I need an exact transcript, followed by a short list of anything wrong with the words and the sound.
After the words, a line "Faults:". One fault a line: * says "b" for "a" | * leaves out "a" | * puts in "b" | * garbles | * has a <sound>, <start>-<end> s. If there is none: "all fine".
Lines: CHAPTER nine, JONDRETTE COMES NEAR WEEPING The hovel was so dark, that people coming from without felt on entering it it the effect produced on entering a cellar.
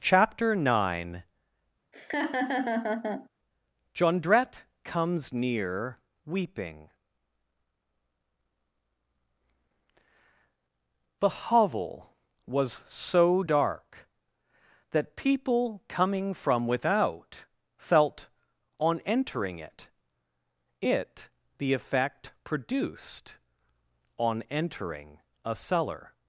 CHAPTER nine, JONDRETTE COMES NEAR WEEPING The hovel was so dark, that people coming from without felt on entering it it the effect produced on entering a cellar.
Faults:
* has a laugh, 1.9-3.3 s